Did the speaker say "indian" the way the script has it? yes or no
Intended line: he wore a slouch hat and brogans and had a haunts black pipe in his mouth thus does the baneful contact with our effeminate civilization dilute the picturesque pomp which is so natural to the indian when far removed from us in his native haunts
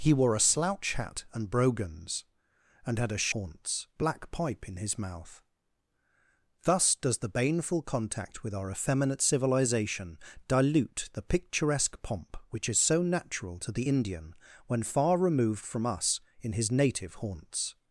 yes